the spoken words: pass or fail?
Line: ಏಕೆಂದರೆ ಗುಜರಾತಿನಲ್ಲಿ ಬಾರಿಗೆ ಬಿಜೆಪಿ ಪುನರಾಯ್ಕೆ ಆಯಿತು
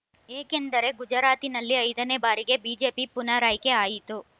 fail